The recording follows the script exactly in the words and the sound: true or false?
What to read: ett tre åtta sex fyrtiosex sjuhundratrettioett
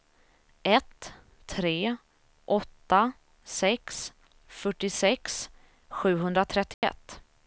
false